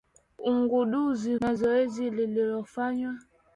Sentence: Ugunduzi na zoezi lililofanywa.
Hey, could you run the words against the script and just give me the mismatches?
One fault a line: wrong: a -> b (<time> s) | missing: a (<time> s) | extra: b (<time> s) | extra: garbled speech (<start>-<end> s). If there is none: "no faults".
no faults